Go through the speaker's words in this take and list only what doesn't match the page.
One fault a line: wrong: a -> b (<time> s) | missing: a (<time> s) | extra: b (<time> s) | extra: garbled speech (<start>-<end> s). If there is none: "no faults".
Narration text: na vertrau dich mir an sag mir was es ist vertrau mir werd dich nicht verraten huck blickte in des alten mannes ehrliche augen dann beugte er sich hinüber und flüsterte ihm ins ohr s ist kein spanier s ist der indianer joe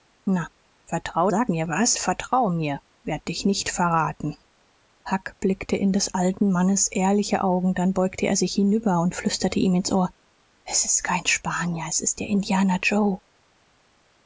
missing: dich mir an (1.3 s)
missing: es ist (2.0 s)